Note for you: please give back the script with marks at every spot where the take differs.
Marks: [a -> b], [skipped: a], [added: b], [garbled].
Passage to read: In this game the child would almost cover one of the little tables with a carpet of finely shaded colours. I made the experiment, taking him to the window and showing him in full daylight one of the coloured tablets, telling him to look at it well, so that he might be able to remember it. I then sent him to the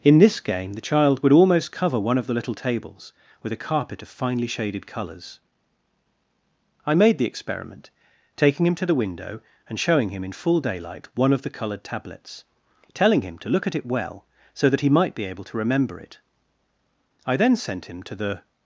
In this game the child would almost cover one of the little tables with a carpet of finely shaded colours. I made the experiment, taking him to the window and showing him in full daylight one of the coloured tablets, telling him to look at it well, so that he might be able to remember it. I then sent him to the